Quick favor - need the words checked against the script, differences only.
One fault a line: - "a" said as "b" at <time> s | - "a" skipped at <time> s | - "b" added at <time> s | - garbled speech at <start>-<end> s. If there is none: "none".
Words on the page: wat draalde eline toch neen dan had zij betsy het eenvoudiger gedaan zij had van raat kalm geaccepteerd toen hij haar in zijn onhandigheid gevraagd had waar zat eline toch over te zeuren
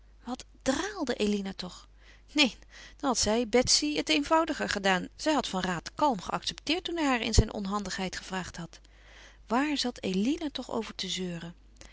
none